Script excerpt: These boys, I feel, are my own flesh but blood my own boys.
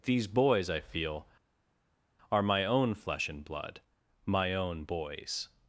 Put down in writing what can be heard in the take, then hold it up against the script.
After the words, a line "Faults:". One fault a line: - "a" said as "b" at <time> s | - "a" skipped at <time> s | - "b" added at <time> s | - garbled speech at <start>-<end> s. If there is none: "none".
These boys, I feel, are my own flesh and blood my own boys.
Faults:
- "but" said as "and" at 3.3 s